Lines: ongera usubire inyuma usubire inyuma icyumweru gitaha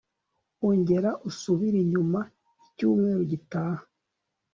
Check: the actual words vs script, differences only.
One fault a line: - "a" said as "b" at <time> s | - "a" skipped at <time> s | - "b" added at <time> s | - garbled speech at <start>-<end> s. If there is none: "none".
- "usubire inyuma" skipped at 2.2 s